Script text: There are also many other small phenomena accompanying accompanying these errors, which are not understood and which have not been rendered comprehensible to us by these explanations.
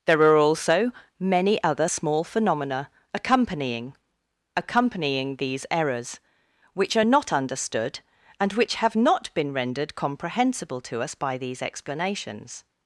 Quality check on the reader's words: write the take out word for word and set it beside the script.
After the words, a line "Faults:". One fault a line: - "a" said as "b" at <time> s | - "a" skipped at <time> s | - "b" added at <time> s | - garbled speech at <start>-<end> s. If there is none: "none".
There are also many other small phenomena accompanying accompanying these errors, which are not understood and which have not been rendered comprehensible to us by these explanations.
Faults:
none